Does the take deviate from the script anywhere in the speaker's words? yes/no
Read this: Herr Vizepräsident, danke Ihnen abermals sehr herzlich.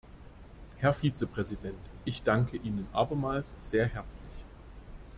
yes